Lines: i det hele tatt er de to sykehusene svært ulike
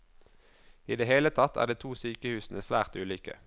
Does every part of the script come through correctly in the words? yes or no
yes